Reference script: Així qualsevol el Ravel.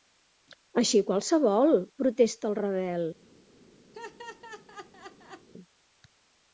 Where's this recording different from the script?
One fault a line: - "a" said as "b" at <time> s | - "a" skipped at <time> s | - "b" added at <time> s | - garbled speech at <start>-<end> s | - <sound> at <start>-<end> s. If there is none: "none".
- "protesta" added at 2.0 s
- laugh at 3.9-5.5 s